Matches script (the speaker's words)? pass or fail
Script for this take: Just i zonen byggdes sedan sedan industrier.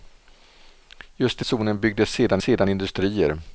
pass